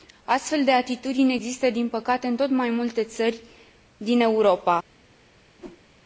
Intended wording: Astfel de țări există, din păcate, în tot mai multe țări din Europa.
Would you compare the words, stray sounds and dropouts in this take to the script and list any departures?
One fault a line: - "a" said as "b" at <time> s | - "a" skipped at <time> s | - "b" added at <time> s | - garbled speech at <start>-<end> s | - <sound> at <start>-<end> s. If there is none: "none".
- "țări" said as "atitudini" at 0.7 s
- whoosh at 5.6-5.9 s